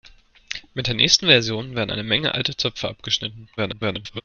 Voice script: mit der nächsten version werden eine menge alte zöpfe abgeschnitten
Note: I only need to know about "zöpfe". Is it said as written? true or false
true